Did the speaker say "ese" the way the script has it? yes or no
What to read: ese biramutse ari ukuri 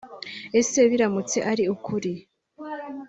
yes